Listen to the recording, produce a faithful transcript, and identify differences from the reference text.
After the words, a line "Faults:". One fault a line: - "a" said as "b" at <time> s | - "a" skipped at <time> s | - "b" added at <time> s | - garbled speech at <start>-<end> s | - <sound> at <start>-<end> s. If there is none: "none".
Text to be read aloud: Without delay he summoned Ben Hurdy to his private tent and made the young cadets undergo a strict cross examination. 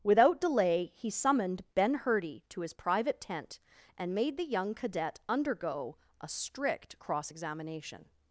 Without delay he summoned Ben Hurdy to his private tent and made the young cadet undergo a strict cross examination.
Faults:
- "cadets" said as "cadet" at 4.7 s